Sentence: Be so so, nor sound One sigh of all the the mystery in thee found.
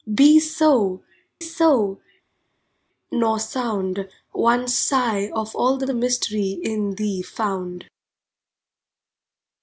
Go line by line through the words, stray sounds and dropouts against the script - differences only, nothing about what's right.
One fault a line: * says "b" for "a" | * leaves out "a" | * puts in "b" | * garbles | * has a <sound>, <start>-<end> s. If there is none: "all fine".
all fine